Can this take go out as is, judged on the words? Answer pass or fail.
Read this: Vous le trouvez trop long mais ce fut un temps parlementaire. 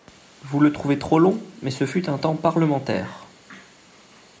pass